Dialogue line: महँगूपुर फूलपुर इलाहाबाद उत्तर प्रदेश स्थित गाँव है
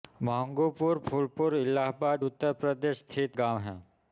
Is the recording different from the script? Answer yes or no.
no